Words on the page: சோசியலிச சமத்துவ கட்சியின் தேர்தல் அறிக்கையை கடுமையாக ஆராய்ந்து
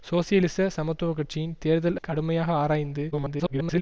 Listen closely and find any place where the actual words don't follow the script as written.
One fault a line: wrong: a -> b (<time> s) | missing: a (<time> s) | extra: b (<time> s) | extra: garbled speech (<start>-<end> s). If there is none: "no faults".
missing: அறிக்கையை (2.0 s)
extra: garbled speech (3.1-3.8 s)